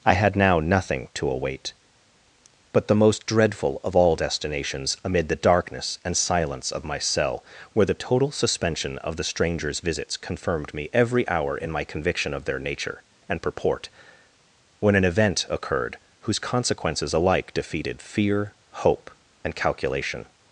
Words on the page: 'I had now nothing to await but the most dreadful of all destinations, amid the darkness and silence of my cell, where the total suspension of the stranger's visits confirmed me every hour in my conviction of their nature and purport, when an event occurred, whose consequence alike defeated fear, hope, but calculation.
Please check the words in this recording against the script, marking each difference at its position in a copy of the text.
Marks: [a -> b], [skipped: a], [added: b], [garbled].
'I had now nothing to await but the most dreadful of all destinations, amid the darkness and silence of my cell, where the total suspension of the stranger's visits confirmed me every hour in my conviction of their nature and purport, when an event occurred, whose [consequence -> consequences] alike defeated fear, hope, [but -> and] calculation.